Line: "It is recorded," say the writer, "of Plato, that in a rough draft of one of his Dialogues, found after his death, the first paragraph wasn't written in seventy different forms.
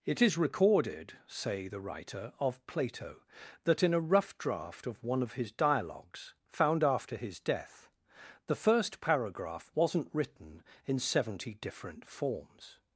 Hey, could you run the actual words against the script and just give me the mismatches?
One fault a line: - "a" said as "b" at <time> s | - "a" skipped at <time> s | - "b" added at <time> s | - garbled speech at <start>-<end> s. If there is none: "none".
none